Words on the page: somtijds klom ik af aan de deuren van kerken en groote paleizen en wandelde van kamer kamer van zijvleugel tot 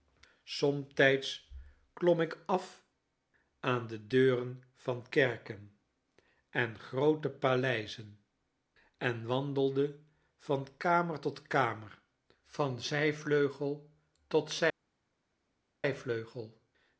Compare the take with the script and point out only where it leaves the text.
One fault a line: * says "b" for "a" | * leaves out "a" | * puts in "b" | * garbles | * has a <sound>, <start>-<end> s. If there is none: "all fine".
* puts in "tot"